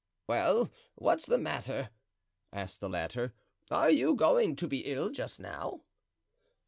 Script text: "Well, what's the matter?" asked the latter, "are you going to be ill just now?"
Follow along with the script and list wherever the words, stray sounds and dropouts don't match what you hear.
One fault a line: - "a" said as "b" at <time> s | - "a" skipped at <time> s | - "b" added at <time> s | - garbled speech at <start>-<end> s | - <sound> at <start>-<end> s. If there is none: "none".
none